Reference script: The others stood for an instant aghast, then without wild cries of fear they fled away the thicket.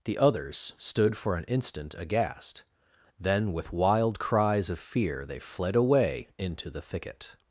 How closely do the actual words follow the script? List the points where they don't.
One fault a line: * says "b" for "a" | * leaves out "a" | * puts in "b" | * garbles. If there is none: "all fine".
* says "with" for "without"
* puts in "into"